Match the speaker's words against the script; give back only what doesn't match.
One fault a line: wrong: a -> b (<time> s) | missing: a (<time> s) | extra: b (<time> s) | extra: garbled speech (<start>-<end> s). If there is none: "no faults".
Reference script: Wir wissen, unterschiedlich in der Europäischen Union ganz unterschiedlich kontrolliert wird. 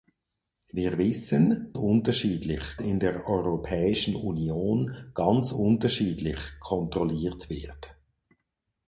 no faults